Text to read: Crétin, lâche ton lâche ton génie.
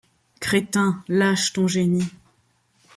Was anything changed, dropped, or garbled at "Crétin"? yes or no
no